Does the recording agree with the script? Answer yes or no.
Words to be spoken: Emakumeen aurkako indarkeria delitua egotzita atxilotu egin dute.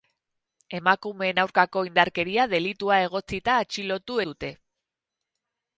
no